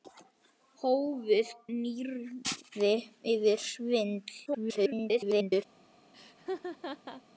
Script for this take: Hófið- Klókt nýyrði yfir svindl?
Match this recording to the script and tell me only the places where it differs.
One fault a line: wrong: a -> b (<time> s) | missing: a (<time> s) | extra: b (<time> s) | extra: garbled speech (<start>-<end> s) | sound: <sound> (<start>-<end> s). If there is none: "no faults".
missing: Klókt (1.5 s)
extra: garbled speech (4.5-5.6 s)
sound: laugh (6.1-7.2 s)